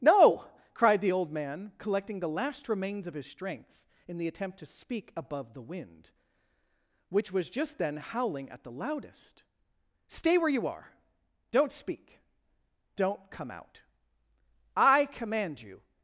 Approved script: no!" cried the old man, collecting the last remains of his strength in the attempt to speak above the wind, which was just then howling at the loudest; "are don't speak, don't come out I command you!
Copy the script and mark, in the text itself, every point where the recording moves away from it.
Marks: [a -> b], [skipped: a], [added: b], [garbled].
no!" cried the old man, collecting the last remains of his strength in the attempt to speak above the wind, which was just then howling at the loudest; [added: stay where you] "are don't speak, don't come out I command you!